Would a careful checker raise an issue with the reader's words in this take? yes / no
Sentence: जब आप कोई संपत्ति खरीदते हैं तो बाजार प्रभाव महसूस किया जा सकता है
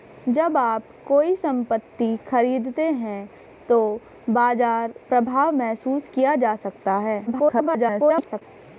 yes